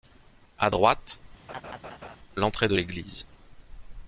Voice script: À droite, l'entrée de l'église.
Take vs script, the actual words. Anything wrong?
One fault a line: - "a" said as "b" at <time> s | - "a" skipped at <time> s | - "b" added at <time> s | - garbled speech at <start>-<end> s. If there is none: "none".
none